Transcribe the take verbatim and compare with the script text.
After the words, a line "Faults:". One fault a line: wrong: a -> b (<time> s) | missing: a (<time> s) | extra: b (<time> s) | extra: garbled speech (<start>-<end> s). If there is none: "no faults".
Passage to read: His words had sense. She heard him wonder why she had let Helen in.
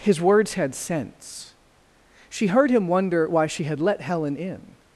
His words had sense. She heard him wonder why she had let Helen in.
Faults:
no faults